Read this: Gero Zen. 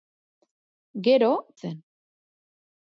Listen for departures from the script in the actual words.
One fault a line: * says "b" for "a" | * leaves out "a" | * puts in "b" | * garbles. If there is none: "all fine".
all fine